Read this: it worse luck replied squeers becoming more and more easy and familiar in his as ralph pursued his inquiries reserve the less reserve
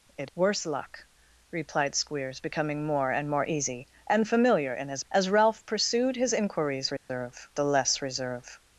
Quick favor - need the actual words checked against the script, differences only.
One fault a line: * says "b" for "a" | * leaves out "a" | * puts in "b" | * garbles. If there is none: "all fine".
all fine